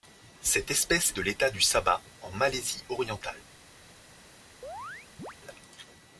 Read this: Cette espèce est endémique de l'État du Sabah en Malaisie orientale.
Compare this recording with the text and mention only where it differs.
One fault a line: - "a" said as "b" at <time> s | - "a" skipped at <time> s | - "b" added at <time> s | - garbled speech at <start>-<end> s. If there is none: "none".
- "est endémique" skipped at 1.1 s